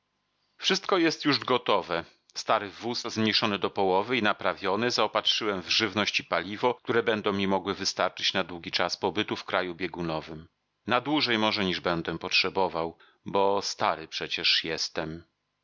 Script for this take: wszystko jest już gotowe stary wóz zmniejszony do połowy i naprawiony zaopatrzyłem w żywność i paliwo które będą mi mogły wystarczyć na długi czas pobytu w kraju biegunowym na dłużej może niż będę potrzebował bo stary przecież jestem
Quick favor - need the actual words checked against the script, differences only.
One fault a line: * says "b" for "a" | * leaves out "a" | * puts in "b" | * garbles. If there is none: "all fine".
all fine